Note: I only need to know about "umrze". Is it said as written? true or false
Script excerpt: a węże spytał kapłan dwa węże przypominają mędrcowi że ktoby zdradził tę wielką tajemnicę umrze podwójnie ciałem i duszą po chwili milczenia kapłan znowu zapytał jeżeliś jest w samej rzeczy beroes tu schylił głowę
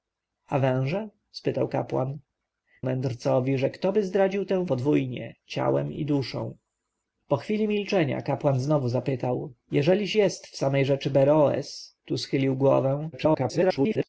false